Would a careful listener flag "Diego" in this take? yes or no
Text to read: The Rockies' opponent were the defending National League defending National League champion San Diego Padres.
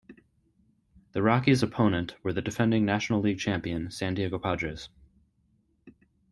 no